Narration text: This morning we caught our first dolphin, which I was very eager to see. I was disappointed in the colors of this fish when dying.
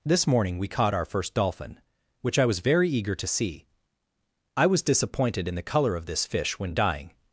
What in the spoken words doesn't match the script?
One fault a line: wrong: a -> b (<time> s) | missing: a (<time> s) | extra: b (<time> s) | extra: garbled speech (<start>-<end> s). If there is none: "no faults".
wrong: colors -> color (5.6 s)